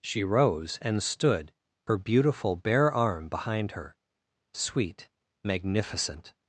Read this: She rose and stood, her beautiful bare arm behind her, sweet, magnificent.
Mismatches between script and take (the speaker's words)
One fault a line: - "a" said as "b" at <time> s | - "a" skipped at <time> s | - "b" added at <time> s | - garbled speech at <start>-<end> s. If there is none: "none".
none